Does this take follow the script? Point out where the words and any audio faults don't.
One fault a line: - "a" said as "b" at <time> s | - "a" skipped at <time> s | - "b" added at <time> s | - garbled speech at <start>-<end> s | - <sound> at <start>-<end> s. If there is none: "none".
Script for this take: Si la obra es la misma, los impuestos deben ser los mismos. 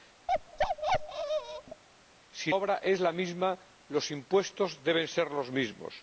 - bark at 0.3-1.8 s
- "la" skipped at 2.5 s